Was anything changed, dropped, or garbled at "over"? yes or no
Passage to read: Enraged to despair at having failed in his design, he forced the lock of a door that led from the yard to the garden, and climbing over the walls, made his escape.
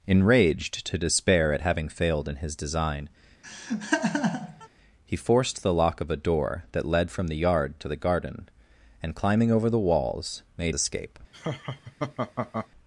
no